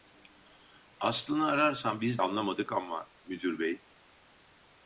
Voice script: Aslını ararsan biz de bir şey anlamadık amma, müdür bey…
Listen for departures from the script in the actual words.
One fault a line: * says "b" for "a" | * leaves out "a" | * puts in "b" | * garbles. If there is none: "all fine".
* leaves out "de bir şey"